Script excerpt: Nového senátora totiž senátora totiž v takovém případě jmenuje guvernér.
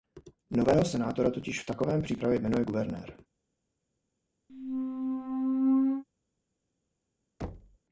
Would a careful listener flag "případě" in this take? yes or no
no